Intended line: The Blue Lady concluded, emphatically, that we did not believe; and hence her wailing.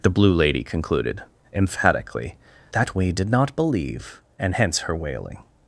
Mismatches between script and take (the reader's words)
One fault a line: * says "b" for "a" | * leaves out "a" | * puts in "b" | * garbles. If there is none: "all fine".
all fine